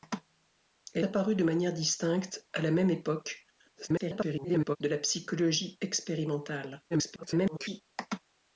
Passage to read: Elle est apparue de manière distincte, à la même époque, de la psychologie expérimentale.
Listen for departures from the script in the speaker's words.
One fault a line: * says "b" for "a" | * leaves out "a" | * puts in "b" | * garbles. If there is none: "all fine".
* leaves out "est"
* garbles
* garbles